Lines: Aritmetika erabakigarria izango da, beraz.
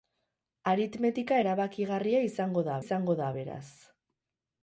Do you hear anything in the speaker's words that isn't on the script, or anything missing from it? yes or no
yes